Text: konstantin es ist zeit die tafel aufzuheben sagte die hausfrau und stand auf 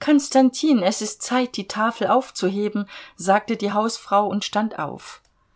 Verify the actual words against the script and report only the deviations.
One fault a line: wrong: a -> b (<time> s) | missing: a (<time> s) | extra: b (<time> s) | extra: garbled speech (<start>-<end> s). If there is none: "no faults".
no faults